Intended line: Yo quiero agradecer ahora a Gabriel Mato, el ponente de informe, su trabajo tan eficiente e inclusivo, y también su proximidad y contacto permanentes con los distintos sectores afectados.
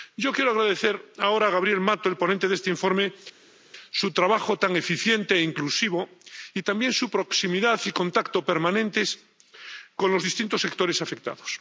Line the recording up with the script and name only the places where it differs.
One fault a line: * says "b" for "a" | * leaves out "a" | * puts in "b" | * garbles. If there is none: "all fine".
* puts in "este"